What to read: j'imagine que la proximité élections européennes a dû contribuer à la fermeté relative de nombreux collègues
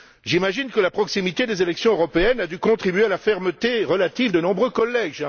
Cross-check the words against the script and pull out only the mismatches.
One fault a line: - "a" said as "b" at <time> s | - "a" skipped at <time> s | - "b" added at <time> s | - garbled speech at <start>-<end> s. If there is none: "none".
- "des" added at 1.5 s